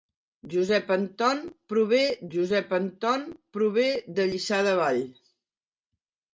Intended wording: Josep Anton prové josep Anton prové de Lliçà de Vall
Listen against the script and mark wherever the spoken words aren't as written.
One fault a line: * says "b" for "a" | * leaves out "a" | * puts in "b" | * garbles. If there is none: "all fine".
all fine